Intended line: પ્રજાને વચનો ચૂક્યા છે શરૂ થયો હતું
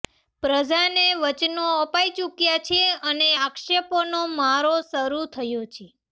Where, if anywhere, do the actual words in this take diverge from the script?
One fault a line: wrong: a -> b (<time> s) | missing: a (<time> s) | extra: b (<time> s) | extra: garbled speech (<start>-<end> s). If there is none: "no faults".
extra: અપાઈ (1.8 s)
extra: અને આક્ષેપોનો મારો (3.1 s)
wrong: હતું -> છે (5.7 s)